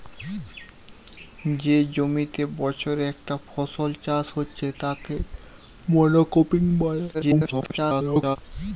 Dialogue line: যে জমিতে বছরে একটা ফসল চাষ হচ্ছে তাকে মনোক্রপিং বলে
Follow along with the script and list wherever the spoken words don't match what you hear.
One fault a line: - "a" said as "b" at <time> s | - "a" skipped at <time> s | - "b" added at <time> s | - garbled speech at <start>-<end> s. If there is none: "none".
- garbled speech at 7.1-8.4 s